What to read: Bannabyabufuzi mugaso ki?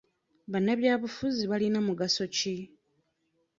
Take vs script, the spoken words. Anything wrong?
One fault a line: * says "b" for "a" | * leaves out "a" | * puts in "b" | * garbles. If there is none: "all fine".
* puts in "balina"